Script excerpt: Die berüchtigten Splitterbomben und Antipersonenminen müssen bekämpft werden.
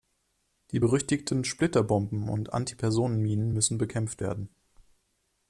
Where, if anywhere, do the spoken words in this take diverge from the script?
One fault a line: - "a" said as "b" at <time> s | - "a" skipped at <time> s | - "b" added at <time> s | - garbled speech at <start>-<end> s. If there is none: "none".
none